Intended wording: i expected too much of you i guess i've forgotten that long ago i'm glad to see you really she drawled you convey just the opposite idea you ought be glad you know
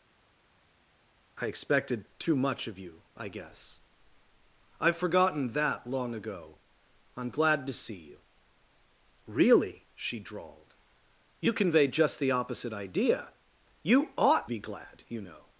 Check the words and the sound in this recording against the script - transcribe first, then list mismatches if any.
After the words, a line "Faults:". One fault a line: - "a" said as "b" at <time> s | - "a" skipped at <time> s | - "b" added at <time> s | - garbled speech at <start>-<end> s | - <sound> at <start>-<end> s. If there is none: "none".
i expected too much of you i guess i've forgotten that long ago i'm glad to see you really she drawled you convey just the opposite idea you ought be glad you know
Faults:
none